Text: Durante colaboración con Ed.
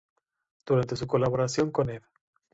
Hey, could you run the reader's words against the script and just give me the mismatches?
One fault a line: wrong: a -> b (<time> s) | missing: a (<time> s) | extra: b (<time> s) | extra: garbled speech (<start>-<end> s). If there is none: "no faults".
extra: su (0.9 s)